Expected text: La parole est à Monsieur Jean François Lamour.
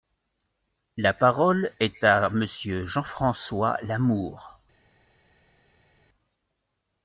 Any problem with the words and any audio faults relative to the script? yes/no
no